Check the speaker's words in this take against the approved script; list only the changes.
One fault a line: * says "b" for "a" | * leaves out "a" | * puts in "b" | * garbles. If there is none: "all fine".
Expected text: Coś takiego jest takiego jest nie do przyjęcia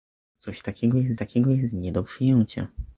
all fine